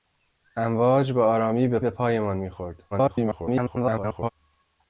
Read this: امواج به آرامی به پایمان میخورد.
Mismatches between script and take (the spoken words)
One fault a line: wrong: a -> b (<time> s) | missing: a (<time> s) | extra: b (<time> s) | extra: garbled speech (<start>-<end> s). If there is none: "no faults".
extra: به (1.8 s)
extra: garbled speech (2.9-4.3 s)